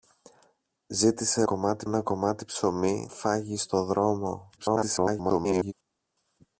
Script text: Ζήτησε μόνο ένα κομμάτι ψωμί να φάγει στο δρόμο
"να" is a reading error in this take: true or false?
true